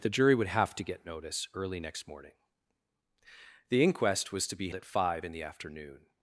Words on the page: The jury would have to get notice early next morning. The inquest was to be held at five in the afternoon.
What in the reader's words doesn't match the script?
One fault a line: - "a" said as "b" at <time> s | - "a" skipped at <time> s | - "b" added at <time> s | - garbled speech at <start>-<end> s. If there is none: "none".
- "held" skipped at 4.7 s